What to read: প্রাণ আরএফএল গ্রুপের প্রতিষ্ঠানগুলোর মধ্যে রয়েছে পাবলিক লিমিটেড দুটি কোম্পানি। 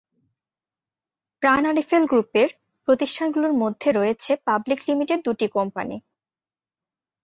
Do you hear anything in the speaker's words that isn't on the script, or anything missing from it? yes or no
no